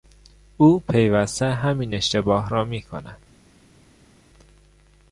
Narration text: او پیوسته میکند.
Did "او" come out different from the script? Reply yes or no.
no